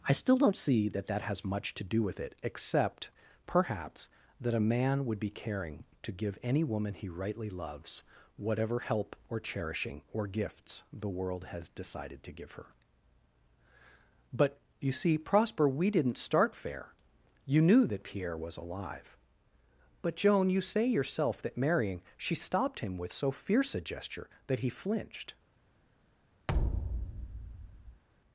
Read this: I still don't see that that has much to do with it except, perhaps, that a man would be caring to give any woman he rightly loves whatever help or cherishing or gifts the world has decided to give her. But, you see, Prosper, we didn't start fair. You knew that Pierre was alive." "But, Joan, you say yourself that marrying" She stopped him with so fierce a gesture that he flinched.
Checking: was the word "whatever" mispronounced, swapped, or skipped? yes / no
no